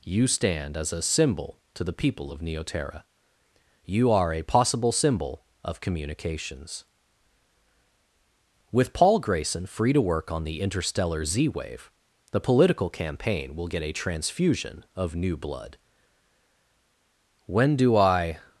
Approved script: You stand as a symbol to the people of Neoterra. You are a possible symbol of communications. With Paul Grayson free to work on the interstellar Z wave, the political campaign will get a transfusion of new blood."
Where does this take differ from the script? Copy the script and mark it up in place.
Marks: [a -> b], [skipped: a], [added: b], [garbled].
You stand as a symbol to the people of Neoterra. You are a possible symbol of communications. With Paul Grayson free to work on the interstellar Z wave, the political campaign will get a transfusion of new blood." [added: When do I]